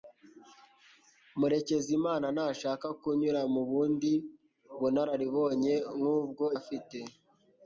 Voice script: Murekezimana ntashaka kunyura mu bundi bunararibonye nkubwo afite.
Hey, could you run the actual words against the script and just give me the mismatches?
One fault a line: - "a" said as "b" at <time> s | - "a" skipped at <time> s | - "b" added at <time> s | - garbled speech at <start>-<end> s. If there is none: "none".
none